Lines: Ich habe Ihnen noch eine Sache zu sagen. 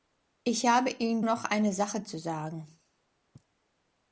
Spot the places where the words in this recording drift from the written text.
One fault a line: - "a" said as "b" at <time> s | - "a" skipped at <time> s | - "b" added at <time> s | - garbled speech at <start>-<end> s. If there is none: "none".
none